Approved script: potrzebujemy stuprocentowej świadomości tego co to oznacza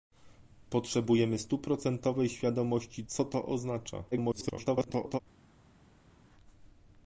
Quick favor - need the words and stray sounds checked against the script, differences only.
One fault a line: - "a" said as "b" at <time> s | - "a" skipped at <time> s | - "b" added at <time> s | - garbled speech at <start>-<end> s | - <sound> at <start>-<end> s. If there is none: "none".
- "tego" skipped at 3.0 s
- garbled speech at 4.1-5.2 s